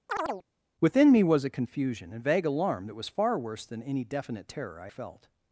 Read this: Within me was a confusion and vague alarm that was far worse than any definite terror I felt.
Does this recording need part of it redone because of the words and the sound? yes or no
yes